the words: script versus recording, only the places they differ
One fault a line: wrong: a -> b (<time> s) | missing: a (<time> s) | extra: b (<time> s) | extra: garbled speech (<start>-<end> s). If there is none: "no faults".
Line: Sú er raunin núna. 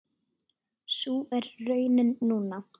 no faults